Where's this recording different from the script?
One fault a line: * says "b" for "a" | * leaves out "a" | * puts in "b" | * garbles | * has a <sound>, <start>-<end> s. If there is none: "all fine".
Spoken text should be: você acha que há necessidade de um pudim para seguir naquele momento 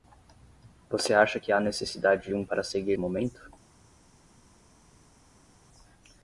* leaves out "pudim"
* leaves out "naquele"